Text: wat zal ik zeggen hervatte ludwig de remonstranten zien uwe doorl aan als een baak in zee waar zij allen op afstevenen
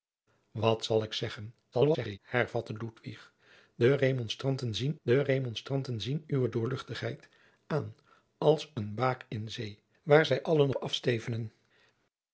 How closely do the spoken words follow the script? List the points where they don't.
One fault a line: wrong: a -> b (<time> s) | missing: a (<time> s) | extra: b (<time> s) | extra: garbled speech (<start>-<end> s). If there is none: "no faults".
extra: garbled speech (1.7-2.2 s)
extra: de remonstranten zien (5.0 s)
missing: op (10.7 s)